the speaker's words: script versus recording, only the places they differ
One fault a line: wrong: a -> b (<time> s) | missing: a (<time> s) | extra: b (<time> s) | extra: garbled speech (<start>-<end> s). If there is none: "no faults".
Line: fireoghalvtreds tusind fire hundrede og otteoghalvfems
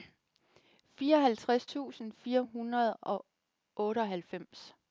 no faults